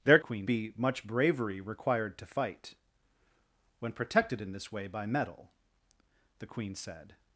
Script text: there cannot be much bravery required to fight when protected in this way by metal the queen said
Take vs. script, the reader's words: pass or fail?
fail